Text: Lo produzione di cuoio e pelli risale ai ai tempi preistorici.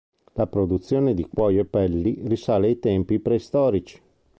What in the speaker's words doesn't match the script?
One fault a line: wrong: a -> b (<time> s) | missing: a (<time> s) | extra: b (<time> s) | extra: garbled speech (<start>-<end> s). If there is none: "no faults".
wrong: Lo -> La (0.3 s)
missing: ai (2.8 s)